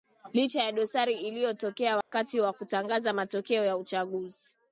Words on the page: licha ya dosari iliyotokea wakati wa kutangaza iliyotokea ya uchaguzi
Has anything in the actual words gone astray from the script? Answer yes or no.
yes